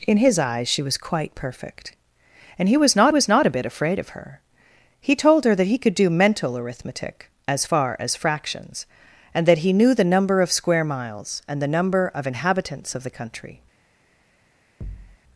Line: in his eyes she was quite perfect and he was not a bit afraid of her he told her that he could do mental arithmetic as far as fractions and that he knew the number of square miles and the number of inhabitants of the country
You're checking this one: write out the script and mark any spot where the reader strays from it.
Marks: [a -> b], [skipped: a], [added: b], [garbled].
in his eyes she was quite perfect and he was not [added: was not] a bit afraid of her he told her that he could do mental arithmetic as far as fractions and that he knew the number of square miles and the number of inhabitants of the country